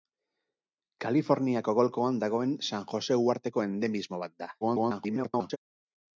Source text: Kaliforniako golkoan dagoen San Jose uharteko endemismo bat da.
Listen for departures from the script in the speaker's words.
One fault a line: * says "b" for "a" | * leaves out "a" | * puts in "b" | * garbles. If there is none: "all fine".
* garbles